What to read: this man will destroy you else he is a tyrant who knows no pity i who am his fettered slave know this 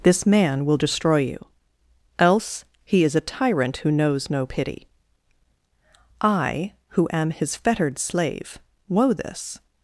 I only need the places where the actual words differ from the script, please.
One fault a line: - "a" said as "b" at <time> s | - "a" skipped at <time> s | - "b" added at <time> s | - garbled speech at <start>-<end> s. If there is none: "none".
- "know" said as "woe" at 8.9 s